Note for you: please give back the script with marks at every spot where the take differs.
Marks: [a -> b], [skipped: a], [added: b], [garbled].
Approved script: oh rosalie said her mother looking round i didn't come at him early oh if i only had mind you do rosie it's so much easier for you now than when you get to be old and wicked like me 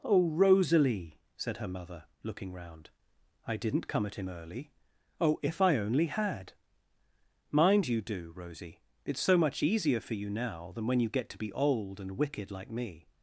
oh rosalie said her mother looking round i didn't come at him early oh if i only had mind you do rosie it's so much easier for you now than when you get to be old and wicked like me